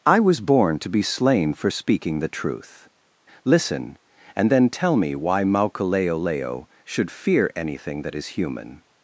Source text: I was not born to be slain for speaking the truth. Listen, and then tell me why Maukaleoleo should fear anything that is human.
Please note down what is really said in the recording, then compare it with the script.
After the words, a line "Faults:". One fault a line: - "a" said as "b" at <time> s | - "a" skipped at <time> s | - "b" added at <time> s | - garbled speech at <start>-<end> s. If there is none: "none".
I was born to be slain for speaking the truth. Listen, and then tell me why Maukaleoleo should fear anything that is human.
Faults:
- "not" skipped at 0.4 s